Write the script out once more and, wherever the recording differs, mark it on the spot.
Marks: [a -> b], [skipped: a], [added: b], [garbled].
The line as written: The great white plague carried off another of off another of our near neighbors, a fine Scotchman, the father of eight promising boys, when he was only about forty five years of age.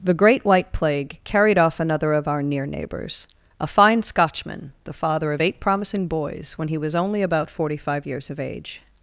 The great white plague carried off another of [skipped: off another of] our near neighbors, a fine Scotchman, the father of eight promising boys, when he was only about forty five years of age.